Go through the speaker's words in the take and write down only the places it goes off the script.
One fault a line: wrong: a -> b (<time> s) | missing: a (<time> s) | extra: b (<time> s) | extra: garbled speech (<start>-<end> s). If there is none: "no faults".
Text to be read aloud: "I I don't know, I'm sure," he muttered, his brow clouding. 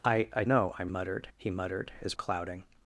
missing: don't (0.4 s)
wrong: sure -> muttered (0.9 s)
missing: brow (2.1 s)